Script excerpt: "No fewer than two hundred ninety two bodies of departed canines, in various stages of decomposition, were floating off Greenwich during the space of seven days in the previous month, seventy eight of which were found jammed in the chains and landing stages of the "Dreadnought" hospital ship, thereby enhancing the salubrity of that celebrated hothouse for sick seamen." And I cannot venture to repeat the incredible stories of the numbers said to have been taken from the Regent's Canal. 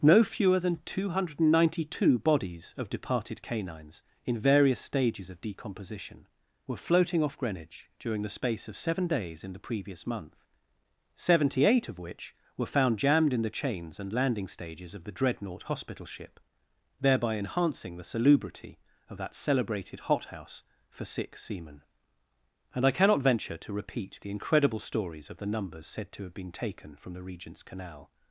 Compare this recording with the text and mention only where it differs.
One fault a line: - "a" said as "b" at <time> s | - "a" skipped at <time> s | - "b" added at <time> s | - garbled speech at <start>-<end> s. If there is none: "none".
none